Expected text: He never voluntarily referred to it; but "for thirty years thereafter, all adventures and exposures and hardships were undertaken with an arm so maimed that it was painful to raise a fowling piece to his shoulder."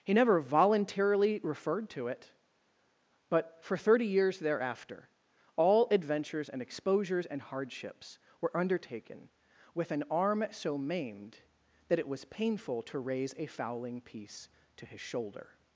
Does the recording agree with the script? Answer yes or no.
yes